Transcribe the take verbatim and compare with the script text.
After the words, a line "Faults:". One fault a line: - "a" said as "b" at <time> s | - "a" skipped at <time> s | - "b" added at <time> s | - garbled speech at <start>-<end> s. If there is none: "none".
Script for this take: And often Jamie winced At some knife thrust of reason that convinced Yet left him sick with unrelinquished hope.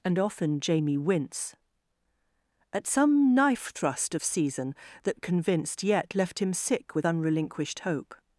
And often Jamie wince At some knife thrust of season that convinced Yet left him sick with unrelinquished hope.
Faults:
- "winced" said as "wince" at 1.0 s
- "reason" said as "season" at 4.2 s